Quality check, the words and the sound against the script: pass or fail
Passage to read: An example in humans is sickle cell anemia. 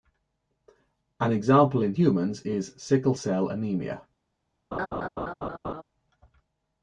fail